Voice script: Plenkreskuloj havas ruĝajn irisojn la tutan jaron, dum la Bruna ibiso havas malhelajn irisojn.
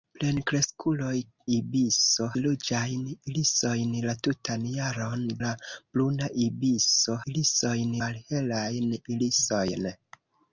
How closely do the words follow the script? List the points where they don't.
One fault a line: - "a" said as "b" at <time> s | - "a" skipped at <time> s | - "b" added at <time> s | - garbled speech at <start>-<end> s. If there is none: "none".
- "havas" said as "ibiso" at 1.6 s
- "dum" skipped at 5.2 s
- "havas" said as "irisojn" at 7.3 s